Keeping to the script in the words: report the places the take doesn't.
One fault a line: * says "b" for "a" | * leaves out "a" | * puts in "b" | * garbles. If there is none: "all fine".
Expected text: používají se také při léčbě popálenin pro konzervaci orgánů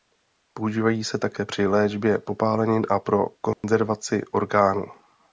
* puts in "a"